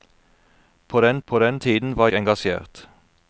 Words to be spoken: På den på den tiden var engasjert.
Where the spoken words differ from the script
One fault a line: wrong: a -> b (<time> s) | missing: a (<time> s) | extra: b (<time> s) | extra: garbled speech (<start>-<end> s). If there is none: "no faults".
no faults